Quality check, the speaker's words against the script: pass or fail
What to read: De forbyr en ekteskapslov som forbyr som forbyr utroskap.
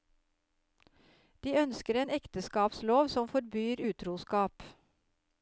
fail